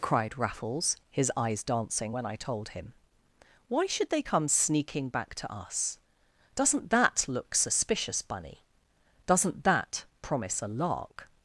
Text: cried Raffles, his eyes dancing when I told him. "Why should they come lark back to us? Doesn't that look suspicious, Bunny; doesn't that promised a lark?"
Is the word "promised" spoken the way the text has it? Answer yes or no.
no